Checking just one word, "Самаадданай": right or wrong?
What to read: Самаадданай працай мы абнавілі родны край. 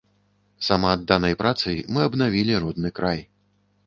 right